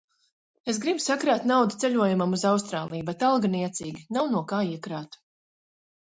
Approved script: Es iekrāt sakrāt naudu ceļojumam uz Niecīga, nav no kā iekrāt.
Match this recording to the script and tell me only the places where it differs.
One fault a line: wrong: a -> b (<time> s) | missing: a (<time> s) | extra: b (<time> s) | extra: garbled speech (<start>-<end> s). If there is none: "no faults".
wrong: iekrāt -> gribu (0.8 s)
extra: Austrāliju bet alga (2.5 s)